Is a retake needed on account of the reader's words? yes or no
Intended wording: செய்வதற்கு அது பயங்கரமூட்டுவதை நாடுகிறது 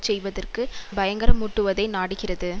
yes